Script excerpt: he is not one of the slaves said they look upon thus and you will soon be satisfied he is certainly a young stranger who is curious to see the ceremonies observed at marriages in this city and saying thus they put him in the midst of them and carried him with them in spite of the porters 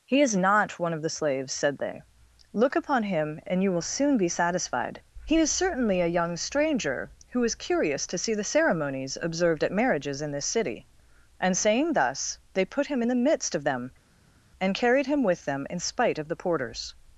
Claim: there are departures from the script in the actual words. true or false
true